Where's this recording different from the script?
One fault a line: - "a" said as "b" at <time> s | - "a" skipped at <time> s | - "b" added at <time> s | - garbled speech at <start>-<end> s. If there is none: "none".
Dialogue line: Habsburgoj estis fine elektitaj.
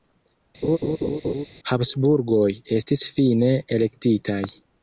none